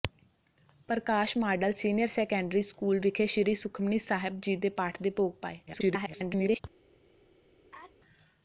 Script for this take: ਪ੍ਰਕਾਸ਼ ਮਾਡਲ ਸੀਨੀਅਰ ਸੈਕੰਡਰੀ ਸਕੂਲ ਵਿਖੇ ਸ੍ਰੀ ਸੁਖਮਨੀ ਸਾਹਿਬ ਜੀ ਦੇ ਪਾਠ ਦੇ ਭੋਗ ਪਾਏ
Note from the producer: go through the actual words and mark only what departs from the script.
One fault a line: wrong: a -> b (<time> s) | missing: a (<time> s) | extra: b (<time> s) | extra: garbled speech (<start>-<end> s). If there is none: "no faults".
extra: garbled speech (5.7-6.6 s)